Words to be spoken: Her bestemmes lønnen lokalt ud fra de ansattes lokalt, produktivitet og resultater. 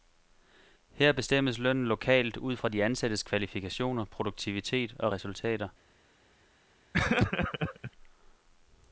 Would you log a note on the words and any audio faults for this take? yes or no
yes